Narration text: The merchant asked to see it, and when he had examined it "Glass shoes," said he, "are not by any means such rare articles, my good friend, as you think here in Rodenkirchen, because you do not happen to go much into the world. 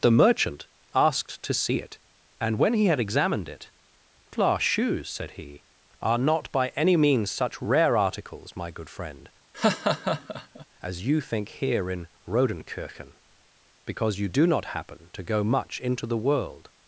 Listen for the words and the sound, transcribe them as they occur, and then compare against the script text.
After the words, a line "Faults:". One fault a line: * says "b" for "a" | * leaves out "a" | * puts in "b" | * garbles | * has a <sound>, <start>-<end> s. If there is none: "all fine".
The merchant asked to see it, and when he had examined it "Glass shoes," said he, "are not by any means such rare articles, my good friend, as you think here in Rodenkirchen, because you do not happen to go much into the world.
Faults:
* has a laugh, 9.5-10.7 s